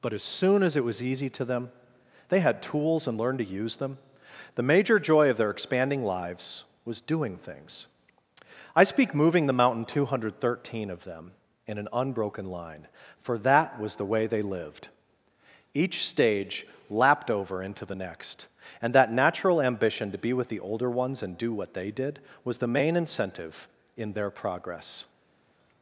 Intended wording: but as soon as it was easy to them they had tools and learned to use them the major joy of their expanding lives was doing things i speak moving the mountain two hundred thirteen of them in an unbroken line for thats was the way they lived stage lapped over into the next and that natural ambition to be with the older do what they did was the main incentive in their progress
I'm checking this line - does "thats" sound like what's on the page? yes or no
no